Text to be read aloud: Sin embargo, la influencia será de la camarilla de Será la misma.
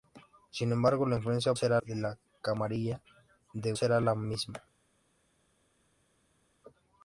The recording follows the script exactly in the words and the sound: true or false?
true